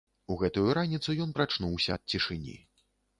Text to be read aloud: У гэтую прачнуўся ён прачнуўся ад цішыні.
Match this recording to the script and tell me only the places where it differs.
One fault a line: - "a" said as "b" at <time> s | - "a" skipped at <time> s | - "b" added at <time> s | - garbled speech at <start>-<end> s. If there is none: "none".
- "прачнуўся" said as "раніцу" at 0.8 s